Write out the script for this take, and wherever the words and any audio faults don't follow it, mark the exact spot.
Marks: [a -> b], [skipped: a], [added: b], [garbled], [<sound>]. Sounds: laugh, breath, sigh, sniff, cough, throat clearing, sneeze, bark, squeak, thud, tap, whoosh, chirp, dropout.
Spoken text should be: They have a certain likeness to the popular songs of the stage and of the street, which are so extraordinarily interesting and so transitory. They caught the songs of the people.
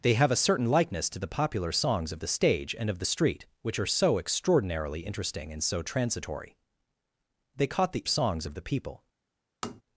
They have a certain likeness to the popular songs of the stage and of the street, which are so extraordinarily interesting and so transitory. They caught the songs of the people. [tap]